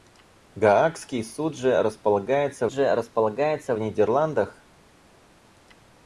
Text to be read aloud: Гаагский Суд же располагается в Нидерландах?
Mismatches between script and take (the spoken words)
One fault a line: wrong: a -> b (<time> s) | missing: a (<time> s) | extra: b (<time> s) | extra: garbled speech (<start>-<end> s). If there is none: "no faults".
extra: же располагается (2.7 s)